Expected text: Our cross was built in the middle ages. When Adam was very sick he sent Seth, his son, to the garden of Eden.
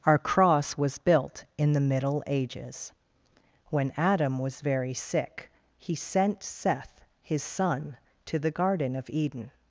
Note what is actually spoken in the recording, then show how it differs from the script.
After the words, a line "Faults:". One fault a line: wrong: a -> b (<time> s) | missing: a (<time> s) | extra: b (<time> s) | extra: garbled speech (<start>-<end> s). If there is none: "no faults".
Our cross was built in the middle ages. When Adam was very sick he sent Seth, his son, to the garden of Eden.
Faults:
no faults